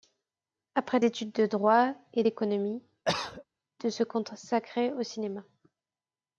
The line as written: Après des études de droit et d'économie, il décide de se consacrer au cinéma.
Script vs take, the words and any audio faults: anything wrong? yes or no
yes